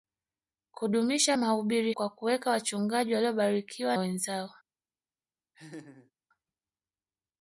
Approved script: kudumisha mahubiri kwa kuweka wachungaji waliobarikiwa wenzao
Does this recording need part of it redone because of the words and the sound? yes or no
yes